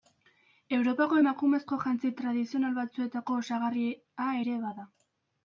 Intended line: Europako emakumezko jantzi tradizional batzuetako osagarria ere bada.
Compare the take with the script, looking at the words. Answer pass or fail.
pass